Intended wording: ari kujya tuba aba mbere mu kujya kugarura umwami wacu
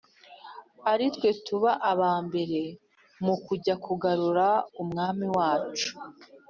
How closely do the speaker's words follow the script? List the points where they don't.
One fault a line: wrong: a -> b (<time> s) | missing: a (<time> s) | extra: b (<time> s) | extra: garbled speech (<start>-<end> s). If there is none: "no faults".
wrong: kujya -> twe (1.1 s)